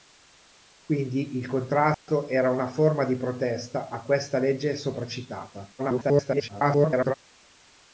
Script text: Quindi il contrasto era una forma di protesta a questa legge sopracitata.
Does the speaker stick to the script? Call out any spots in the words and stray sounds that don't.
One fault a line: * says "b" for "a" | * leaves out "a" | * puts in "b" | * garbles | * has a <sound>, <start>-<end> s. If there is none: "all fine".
* has a dropout, 1.9-2.1 s
* garbles